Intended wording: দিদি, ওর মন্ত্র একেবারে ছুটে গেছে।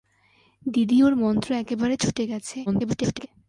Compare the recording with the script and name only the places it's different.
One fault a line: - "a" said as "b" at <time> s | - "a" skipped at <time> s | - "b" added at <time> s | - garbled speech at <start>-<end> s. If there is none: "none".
- garbled speech at 2.7-3.3 s